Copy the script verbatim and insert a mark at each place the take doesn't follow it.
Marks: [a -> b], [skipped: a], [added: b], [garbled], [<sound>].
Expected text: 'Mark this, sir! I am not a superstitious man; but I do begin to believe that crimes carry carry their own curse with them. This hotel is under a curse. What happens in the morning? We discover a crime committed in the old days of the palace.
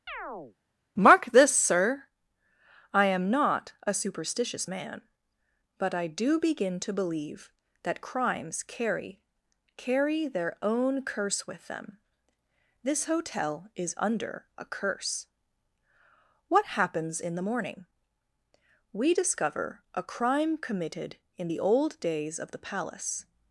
[chirp] 'Mark this, sir! I am not a superstitious man; but I do begin to believe that crimes carry carry their own curse with them. This hotel is under a curse. What happens in the morning? We discover a crime committed in the old days of the palace.